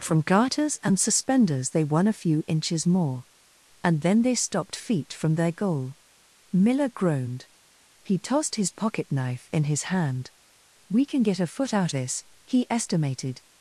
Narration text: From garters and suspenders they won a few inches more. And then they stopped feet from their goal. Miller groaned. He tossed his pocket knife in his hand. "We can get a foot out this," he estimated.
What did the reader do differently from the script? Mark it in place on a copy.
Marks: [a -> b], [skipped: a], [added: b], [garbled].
From garters and suspenders they won a few inches more. And then they stopped feet from their goal. Miller groaned. He tossed his pocket knife in his hand. "We can get a foot out this," he estimated.